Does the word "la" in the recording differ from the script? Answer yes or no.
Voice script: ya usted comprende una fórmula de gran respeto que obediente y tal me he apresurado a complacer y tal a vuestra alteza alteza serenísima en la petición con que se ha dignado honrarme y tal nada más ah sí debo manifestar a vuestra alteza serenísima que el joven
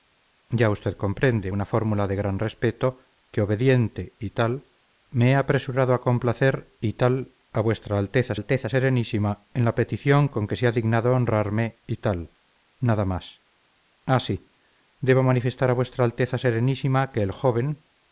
no